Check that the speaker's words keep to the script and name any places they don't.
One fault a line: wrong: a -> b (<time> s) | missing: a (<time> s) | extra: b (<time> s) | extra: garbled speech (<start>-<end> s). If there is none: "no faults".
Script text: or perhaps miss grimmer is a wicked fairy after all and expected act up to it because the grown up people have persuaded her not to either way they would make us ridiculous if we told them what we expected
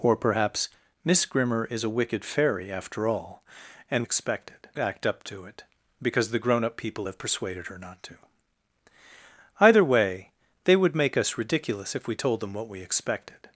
no faults